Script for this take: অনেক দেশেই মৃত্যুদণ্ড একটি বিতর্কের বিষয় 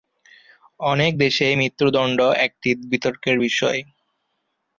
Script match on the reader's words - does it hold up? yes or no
yes